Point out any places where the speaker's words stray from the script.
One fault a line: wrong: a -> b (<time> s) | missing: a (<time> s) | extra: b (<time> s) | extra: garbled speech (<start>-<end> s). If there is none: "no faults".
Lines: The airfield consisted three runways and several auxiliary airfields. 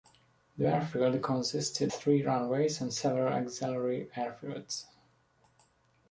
no faults